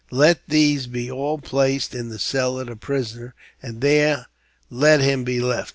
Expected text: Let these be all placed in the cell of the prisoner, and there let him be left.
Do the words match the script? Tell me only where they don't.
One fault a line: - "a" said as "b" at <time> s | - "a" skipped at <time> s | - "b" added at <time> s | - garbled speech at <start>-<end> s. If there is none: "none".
none